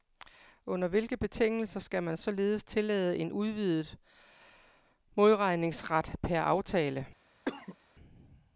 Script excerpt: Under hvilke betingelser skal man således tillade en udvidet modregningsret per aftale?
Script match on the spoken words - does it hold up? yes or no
yes